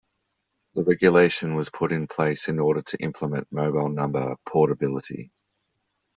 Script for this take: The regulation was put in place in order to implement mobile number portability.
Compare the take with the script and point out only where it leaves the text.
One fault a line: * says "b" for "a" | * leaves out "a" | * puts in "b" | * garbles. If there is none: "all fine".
all fine